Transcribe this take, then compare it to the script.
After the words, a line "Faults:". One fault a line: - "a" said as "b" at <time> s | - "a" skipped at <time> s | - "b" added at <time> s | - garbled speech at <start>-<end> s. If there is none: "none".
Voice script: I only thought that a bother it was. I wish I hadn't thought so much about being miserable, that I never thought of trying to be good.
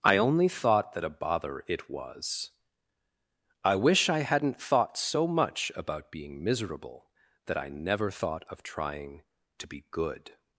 I only thought that a bother it was. I wish I hadn't thought so much about being miserable, that I never thought of trying to be good.
Faults:
none